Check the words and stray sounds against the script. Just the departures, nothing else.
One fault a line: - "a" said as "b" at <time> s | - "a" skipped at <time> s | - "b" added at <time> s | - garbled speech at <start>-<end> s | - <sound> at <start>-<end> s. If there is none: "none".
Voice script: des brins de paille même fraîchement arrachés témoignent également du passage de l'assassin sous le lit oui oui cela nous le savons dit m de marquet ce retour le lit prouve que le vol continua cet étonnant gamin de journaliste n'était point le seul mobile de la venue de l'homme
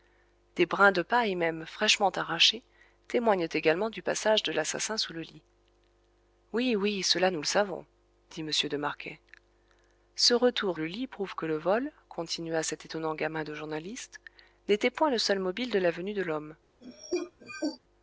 - cough at 16.8-17.8 s